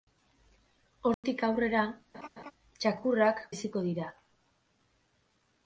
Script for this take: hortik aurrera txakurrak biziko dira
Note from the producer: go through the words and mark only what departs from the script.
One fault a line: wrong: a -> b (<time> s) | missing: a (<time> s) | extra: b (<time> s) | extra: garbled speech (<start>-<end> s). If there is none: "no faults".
no faults